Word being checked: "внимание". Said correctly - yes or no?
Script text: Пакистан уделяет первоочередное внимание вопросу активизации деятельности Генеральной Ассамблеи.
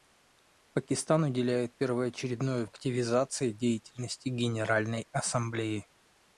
no